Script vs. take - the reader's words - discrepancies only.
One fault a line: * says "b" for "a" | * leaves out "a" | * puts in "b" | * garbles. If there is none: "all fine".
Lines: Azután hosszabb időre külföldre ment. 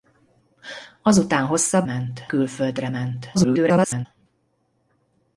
* says "ment" for "időre"
* garbles